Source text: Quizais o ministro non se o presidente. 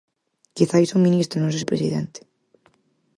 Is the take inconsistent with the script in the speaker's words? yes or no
no